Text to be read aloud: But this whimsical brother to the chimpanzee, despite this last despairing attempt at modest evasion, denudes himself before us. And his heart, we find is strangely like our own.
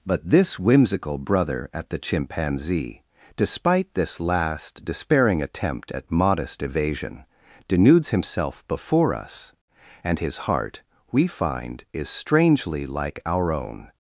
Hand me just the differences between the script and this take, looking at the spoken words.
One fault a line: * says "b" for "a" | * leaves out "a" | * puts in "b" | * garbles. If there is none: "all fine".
* says "at" for "to"